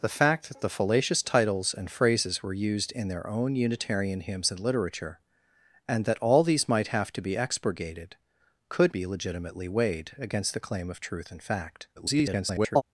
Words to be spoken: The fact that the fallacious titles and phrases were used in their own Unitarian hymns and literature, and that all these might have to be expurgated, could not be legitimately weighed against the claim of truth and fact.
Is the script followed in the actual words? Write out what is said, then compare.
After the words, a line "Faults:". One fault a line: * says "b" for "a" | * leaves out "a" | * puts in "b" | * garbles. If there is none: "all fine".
The fact that the fallacious titles and phrases were used in their own Unitarian hymns and literature, and that all these might have to be expurgated, could be legitimately weighed against the claim of truth and fact. [garbled]
Faults:
* leaves out "not"
* garbles